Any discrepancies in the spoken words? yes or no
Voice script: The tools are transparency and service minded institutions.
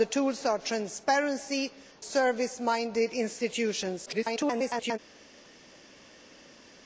yes